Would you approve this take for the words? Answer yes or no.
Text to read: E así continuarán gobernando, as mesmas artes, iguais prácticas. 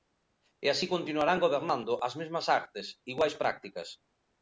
yes